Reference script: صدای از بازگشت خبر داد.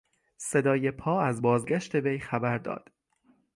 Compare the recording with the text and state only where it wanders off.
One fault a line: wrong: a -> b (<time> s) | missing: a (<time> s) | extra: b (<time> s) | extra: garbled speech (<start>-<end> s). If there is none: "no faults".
extra: پا (0.9 s)
extra: وی (1.9 s)